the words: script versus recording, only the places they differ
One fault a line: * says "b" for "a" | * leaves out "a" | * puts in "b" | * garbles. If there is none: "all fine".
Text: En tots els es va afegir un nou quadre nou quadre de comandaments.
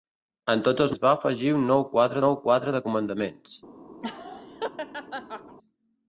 all fine